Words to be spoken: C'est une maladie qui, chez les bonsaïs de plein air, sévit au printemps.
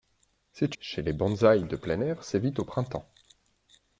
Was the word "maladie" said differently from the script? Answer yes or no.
yes